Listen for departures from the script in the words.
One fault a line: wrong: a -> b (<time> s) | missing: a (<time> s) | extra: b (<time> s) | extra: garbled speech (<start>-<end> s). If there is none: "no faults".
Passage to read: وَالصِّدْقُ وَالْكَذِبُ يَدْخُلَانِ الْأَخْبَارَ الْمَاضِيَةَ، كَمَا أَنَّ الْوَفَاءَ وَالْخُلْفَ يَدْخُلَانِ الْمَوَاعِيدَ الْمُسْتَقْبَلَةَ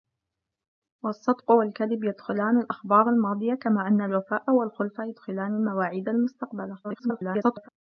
extra: garbled speech (6.8-7.7 s)